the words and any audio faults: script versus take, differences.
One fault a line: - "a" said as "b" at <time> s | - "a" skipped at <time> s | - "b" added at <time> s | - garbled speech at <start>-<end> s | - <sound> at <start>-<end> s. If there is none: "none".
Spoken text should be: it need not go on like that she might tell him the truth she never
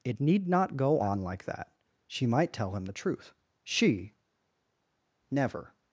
none